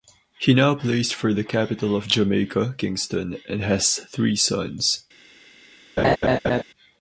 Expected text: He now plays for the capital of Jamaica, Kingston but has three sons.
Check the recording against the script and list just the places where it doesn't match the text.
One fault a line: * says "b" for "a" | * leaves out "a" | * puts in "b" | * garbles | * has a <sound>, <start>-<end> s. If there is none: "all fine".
* says "and" for "but"
* has a laugh, 6.0-6.6 s